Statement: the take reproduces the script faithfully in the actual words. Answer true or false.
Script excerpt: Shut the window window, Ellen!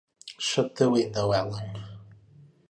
false